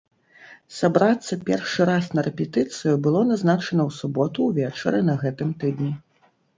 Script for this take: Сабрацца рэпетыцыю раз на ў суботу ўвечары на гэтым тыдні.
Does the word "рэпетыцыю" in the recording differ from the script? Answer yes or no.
yes